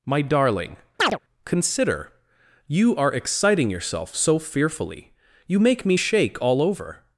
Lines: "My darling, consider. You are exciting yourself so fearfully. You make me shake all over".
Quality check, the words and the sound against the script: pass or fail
fail